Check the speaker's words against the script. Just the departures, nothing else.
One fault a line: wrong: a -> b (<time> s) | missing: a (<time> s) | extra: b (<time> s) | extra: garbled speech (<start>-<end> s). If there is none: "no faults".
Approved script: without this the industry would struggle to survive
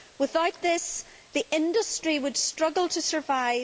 no faults